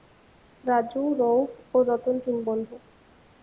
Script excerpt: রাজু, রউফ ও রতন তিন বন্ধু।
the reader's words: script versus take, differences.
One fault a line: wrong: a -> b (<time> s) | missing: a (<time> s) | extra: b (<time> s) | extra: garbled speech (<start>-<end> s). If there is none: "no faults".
no faults